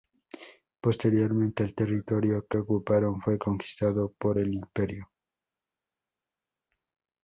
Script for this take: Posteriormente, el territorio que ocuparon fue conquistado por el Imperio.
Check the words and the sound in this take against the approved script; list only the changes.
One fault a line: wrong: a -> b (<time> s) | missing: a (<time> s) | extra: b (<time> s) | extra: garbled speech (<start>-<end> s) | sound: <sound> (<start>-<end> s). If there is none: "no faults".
no faults